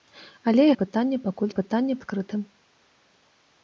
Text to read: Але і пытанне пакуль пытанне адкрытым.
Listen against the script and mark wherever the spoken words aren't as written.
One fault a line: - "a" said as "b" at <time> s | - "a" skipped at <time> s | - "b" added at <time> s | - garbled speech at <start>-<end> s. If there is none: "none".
none